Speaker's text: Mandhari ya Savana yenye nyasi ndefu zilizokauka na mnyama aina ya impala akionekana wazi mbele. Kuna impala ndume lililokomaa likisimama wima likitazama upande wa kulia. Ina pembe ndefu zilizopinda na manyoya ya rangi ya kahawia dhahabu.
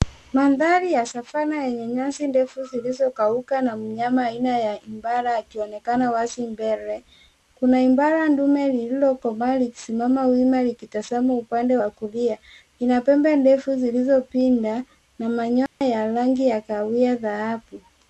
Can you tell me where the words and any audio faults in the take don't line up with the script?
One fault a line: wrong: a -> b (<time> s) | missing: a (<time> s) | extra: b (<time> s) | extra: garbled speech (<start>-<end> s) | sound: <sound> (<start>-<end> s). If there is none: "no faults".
sound: dropout (15.7-15.8 s)